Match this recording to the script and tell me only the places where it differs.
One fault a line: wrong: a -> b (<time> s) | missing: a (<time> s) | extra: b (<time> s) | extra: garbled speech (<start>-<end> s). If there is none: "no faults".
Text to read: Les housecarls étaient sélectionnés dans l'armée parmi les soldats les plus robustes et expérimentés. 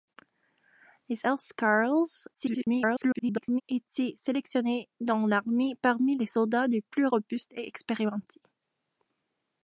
extra: garbled speech (2.3-3.6 s)